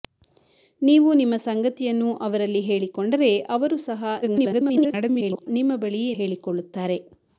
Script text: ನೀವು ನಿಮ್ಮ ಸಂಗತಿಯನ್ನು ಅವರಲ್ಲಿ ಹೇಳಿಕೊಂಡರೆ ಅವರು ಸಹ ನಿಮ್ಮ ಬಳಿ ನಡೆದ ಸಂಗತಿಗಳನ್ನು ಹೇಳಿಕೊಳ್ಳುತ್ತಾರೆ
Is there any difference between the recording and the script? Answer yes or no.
yes